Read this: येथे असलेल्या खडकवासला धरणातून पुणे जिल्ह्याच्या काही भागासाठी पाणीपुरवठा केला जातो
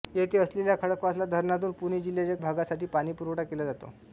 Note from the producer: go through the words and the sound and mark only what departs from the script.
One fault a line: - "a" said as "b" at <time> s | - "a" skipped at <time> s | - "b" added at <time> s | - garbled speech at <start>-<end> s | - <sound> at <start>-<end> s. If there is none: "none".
- "काही" skipped at 2.4 s